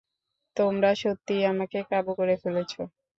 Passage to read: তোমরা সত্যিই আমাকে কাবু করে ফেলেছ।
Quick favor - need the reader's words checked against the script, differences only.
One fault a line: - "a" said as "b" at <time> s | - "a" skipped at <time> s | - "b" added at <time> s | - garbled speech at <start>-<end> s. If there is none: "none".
none